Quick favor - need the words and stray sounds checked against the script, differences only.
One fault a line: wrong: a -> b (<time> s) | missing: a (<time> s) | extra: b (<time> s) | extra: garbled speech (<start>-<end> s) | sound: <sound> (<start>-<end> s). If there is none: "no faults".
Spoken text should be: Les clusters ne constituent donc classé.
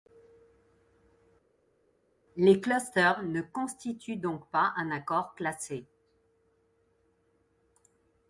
extra: pas un accord (4.5 s)